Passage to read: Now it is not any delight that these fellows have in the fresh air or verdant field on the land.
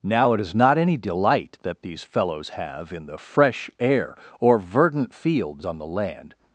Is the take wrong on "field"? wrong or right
wrong